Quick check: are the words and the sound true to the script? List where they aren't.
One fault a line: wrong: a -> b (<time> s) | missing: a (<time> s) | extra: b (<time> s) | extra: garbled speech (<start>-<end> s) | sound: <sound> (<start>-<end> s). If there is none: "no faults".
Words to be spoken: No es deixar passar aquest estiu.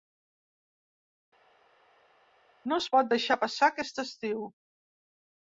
extra: pot (3.0 s)